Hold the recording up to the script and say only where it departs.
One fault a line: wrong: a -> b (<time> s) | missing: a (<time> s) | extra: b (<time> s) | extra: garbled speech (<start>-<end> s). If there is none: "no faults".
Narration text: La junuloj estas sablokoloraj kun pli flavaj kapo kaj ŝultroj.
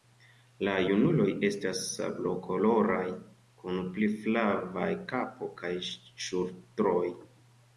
no faults